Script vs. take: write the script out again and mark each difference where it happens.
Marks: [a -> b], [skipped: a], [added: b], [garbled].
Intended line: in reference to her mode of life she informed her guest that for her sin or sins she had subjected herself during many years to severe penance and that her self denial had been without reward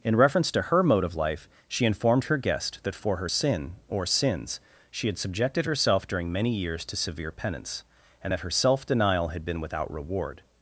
in reference to her mode of life she informed her guest that for her sin or sins she had subjected herself during many years to severe penance and that her self denial had been without reward